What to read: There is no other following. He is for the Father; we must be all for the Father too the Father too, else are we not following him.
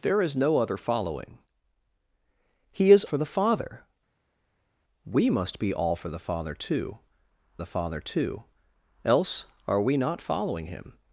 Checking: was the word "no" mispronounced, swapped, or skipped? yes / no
no